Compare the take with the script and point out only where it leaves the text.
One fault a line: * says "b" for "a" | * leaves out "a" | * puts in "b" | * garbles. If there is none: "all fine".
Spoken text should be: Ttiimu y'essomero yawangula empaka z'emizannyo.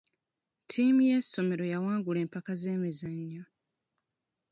all fine